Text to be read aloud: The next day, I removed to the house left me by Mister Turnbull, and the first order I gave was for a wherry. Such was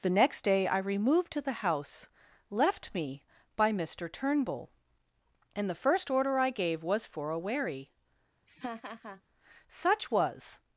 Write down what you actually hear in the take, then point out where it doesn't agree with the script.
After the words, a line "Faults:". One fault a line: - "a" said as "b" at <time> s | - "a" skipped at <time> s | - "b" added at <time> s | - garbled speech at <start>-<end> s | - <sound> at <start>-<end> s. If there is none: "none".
The next day, I removed to the house left me by Mister Turnbull, and the first order I gave was for a wherry. Such was
Faults:
- laugh at 8.5-9.2 s